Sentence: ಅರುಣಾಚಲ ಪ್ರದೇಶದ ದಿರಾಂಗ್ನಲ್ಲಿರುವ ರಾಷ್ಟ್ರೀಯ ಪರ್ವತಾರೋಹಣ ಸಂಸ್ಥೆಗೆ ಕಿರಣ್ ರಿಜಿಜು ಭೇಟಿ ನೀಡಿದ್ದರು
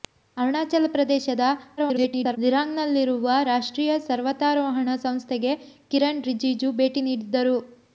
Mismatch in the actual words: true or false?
true